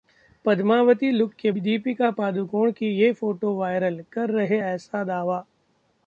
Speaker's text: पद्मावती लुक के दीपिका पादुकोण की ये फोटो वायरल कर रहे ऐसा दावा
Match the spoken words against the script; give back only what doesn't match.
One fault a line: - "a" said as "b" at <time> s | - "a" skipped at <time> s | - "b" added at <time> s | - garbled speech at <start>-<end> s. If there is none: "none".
none